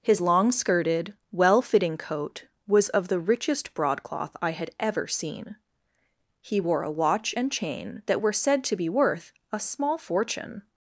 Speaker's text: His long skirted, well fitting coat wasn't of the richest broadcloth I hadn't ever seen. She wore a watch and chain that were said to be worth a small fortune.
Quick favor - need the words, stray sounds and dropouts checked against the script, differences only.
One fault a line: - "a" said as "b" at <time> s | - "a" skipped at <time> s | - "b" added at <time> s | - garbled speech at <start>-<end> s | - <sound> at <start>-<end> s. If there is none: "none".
- "wasn't" said as "was" at 2.7 s
- "hadn't" said as "had" at 4.5 s
- "She" said as "He" at 6.4 s